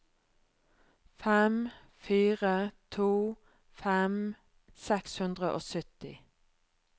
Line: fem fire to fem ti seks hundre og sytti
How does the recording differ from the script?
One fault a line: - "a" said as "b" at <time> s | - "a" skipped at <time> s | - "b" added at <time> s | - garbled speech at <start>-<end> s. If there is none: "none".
- "ti" skipped at 4.3 s